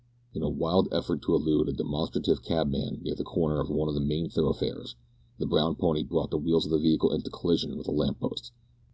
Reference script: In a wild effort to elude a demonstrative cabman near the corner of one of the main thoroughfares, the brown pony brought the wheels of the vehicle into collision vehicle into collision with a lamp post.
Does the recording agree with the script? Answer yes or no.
no